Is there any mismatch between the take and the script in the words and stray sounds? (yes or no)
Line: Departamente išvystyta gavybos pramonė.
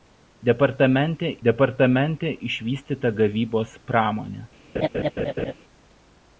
yes